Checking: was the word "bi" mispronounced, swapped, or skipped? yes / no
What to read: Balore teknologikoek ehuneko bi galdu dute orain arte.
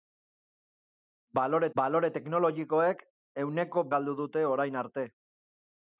yes